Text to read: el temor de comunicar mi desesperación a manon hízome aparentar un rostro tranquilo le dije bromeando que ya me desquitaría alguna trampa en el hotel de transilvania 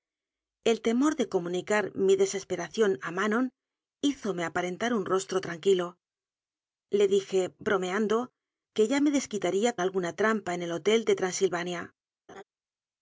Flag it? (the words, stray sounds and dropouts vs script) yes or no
yes